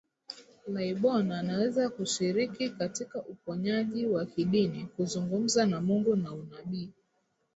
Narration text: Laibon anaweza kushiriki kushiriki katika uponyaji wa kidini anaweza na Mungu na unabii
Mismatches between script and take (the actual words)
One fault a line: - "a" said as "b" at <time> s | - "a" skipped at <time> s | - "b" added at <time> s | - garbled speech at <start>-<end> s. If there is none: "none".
- "kushiriki" skipped at 2.7 s
- "anaweza" said as "kuzungumza" at 4.8 s